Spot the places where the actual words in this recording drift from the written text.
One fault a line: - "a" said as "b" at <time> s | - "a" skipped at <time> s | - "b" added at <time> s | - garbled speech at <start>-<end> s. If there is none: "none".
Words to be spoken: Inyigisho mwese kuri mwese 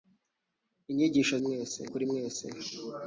none